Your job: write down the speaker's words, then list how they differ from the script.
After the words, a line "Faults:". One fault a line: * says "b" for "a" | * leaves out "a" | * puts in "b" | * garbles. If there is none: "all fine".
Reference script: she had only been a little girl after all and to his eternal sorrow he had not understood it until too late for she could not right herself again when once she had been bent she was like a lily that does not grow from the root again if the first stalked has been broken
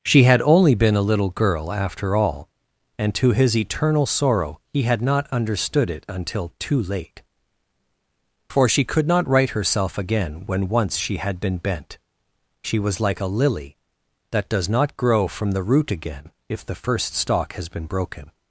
she had only been a little girl after all and to his eternal sorrow he had not understood it until too late for she could not right herself again when once she had been bent she was like a lily that does not grow from the root again if the first stalk has been broken
Faults:
* says "stalk" for "stalked"